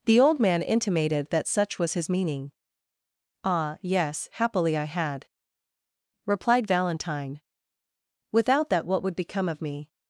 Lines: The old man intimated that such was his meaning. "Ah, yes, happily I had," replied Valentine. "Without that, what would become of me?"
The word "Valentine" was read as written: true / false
true